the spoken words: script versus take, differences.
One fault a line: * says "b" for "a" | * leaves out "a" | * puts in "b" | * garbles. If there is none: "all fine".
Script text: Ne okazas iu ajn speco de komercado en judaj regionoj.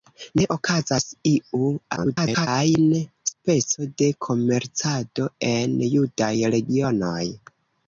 * garbles